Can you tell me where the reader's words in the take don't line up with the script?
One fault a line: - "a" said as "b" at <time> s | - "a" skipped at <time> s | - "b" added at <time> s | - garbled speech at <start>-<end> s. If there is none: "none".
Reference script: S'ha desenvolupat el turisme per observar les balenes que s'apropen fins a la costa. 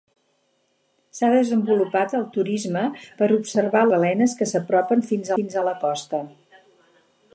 - "les" skipped at 3.9 s
- "fins" added at 5.4 s